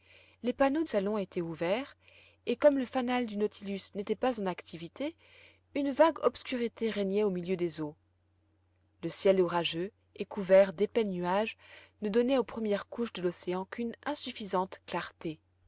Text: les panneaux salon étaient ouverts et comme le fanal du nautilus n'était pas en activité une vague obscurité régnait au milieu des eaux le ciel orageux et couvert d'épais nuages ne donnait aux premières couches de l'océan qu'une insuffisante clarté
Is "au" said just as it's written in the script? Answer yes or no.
yes